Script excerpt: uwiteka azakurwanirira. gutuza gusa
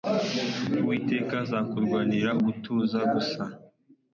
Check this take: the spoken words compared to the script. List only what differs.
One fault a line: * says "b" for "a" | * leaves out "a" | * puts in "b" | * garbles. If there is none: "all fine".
all fine